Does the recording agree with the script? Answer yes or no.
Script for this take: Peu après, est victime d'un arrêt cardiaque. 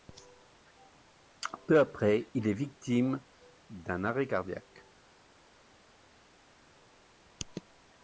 no